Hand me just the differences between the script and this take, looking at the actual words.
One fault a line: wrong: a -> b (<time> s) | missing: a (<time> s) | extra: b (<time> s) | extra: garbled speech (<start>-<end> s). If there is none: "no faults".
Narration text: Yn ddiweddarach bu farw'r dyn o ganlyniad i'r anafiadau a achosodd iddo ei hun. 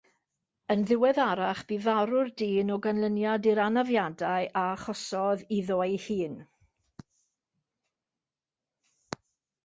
no faults